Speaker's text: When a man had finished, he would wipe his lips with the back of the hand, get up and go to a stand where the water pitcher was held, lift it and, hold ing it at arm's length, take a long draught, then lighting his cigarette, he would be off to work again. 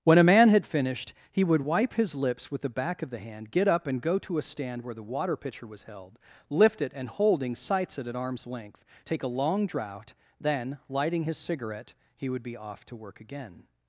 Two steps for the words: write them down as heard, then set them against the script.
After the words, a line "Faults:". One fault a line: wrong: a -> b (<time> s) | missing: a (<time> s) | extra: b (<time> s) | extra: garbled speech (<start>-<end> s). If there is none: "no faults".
When a man had finished, he would wipe his lips with the back of the hand, get up and go to a stand where the water pitcher was held, lift it and, holding sights it at arm's length, take a long draught, then lighting his cigarette, he would be off to work again.
Faults:
wrong: hold ing -> holding sights (7.1 s)